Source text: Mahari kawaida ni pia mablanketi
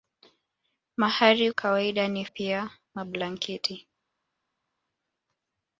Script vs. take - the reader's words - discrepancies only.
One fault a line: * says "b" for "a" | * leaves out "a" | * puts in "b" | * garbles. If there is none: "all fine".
all fine